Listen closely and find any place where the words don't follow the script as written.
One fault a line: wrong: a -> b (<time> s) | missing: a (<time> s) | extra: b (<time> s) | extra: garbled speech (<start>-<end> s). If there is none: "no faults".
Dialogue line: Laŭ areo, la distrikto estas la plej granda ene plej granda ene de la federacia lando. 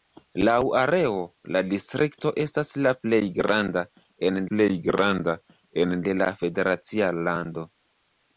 no faults